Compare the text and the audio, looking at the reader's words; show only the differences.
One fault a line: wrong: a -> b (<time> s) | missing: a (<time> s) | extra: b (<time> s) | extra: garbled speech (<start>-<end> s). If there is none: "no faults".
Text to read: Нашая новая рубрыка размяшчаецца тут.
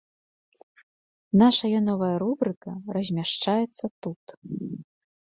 no faults